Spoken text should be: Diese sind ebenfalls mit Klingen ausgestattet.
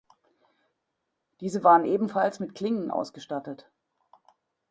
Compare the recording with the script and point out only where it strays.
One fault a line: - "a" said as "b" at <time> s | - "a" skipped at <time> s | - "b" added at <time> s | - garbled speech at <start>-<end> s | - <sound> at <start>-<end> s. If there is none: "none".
- "sind" said as "waren" at 1.6 s